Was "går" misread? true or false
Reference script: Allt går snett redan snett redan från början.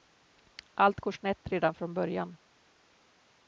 false